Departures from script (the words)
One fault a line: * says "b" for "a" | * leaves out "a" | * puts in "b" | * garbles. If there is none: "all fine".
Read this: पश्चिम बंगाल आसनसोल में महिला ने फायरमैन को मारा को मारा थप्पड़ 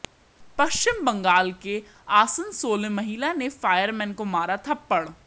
* puts in "के"
* leaves out "को मारा"